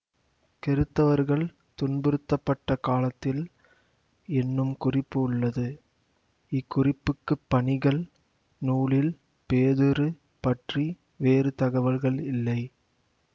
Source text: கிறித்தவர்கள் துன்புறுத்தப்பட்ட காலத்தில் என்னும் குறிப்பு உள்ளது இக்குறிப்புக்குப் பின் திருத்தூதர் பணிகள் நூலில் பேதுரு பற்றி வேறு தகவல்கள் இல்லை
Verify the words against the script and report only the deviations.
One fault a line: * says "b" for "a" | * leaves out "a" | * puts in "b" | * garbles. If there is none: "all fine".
* leaves out "பின் திருத்தூதர்"